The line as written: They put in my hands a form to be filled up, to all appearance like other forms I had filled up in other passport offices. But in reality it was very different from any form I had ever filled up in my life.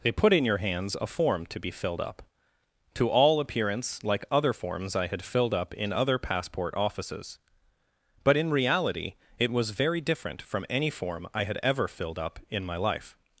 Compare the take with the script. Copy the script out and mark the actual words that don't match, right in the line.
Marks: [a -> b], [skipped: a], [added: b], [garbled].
They put in [my -> your] hands a form to be filled up, to all appearance like other forms I had filled up in other passport offices. But in reality it was very different from any form I had ever filled up in my life.